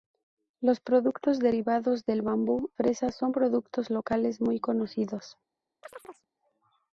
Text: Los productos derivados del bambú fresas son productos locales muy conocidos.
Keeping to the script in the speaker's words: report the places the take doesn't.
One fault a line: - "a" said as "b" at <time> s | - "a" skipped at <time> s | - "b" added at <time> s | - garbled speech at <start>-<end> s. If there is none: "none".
none